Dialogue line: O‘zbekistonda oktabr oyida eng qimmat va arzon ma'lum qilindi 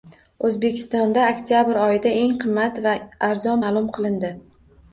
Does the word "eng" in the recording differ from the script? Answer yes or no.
no